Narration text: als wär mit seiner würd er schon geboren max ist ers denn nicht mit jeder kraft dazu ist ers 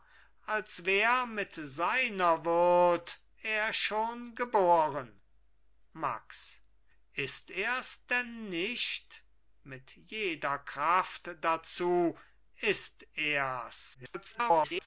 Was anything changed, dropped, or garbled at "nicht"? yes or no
no